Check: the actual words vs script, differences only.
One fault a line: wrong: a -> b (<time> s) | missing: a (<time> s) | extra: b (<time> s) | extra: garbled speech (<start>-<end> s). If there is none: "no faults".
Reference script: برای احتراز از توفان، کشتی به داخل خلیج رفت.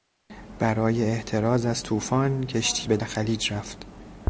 missing: داخل (3.0 s)